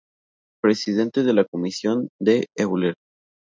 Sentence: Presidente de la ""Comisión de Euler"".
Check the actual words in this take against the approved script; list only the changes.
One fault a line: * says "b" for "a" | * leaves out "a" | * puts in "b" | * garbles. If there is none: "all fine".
all fine